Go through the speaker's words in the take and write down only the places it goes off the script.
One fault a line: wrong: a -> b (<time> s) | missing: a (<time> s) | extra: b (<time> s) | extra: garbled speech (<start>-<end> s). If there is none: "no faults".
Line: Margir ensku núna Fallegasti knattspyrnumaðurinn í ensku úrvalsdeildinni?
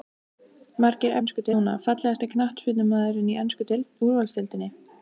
no faults